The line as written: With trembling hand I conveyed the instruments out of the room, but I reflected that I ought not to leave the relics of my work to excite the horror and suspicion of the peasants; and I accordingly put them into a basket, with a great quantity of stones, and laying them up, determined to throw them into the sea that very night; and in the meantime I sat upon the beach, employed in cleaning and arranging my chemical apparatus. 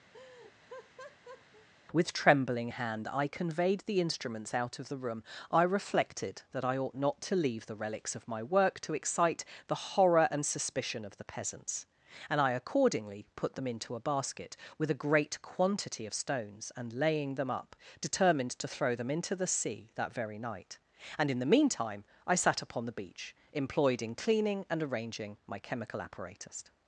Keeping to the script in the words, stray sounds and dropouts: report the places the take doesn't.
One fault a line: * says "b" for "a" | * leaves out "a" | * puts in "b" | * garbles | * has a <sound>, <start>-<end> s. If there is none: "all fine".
* has a laugh, 0.1-1.7 s
* leaves out "but"